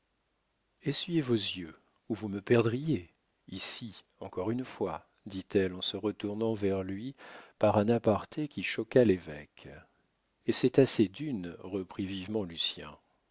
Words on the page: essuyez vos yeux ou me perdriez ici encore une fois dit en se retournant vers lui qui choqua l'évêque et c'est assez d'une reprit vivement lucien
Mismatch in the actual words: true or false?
true